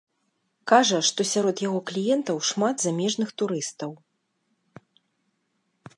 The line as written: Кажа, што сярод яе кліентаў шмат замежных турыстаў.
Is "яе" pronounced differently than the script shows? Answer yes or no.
yes